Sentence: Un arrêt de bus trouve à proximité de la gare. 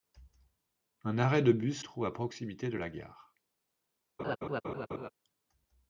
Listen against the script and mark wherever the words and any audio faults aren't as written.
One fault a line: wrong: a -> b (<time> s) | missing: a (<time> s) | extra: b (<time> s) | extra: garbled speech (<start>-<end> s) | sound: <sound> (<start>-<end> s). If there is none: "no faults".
sound: laugh (4.2-5.1 s)